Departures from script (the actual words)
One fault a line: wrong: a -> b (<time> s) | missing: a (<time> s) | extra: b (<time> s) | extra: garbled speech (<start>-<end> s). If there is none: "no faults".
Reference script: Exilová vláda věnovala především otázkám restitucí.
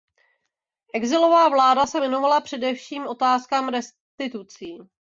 extra: se (1.9 s)